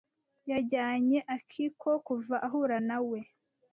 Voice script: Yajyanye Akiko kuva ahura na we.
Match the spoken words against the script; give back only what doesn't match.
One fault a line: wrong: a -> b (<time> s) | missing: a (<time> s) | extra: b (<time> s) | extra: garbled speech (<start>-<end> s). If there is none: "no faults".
no faults